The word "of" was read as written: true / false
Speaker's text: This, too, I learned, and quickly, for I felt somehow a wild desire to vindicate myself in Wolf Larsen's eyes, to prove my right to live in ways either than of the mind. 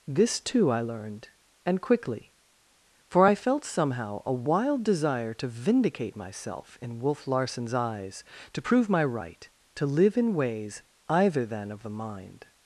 true